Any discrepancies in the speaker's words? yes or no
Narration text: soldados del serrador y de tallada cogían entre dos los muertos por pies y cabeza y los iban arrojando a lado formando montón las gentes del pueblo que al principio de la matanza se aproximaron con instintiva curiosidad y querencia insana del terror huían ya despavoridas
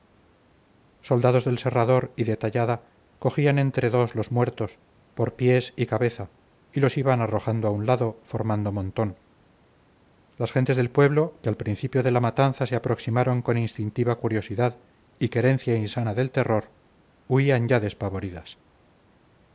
yes